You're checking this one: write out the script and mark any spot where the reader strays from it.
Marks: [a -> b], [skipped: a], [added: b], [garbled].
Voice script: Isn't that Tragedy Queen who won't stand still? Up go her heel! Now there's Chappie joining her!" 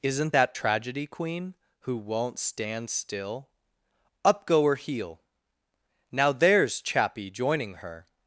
Isn't that Tragedy Queen who won't stand still? Up go her heel! Now there's Chappie joining her!"